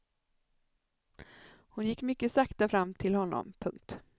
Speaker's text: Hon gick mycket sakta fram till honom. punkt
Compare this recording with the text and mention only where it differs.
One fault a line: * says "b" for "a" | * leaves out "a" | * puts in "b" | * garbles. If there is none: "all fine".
all fine